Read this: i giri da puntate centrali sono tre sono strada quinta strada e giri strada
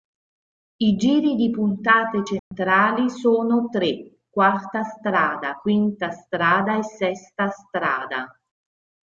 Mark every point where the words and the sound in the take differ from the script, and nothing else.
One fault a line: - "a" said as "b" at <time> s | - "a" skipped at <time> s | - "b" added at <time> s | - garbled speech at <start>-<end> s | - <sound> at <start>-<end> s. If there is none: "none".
- "da" said as "di" at 1.4 s
- dropout at 2.4-2.5 s
- "sono" said as "quarta" at 4.3 s
- "giri" said as "sesta" at 6.8 s